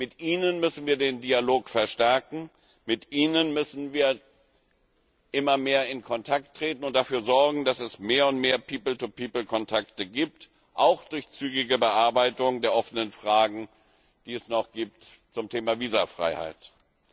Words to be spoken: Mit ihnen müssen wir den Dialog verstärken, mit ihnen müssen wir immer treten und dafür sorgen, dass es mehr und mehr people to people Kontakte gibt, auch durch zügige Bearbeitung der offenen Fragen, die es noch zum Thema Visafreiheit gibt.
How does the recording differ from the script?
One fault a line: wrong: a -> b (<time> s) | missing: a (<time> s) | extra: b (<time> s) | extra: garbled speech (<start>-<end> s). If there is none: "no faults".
extra: mehr in Kontakt (5.6 s)